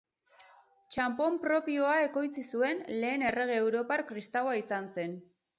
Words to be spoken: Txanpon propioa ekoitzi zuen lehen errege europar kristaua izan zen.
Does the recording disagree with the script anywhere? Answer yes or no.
no